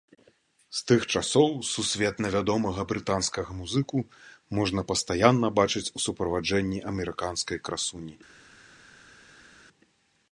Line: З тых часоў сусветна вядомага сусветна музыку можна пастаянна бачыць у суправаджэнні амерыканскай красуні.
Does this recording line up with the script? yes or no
no